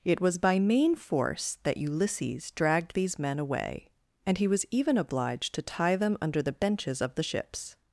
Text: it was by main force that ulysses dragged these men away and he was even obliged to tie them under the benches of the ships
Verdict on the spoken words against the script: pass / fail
pass